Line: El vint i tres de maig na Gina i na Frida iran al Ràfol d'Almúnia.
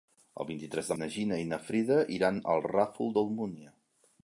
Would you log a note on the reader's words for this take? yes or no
yes